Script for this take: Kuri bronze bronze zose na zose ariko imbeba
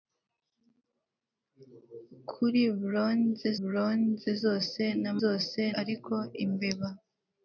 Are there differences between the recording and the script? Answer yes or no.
no